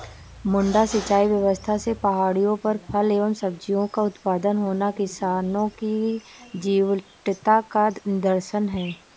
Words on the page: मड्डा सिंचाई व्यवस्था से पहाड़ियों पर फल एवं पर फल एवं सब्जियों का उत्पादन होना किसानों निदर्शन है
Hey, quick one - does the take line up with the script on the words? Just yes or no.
no